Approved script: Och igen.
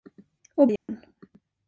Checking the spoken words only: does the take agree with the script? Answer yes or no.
yes